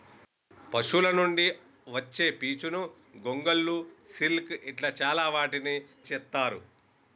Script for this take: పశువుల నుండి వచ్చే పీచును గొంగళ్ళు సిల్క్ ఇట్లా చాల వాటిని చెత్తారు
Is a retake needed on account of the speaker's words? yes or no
no